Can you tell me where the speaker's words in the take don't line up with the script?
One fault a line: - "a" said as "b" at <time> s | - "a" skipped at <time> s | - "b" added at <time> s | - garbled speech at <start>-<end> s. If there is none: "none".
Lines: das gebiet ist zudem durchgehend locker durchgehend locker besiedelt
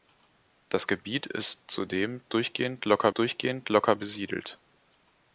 none